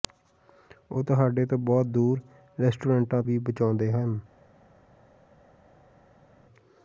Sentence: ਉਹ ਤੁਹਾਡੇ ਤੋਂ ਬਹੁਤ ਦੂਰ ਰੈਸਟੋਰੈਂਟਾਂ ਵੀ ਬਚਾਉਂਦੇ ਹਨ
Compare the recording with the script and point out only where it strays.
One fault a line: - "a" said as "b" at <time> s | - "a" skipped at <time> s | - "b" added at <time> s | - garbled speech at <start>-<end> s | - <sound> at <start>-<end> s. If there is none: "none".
none